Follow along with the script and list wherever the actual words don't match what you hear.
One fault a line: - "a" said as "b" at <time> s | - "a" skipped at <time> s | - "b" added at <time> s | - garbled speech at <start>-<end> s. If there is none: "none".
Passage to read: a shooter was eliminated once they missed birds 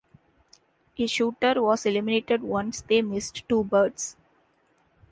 - "two" added at 3.5 s